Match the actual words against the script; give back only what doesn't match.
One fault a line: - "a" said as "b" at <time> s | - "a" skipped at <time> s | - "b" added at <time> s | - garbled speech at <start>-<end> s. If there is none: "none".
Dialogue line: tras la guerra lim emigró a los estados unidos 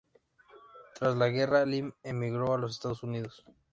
none